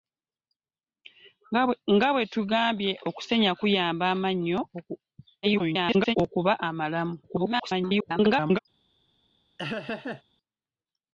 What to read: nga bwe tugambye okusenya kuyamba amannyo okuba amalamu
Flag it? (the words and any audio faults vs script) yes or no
yes